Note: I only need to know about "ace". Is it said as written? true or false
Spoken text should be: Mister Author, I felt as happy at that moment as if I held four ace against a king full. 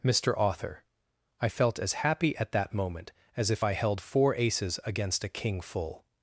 false